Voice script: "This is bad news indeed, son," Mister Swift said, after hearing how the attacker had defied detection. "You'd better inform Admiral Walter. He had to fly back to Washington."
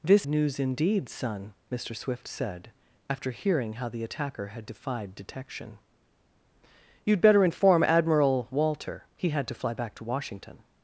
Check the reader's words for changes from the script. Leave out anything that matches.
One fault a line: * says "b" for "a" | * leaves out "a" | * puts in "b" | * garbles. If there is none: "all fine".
* leaves out "is bad"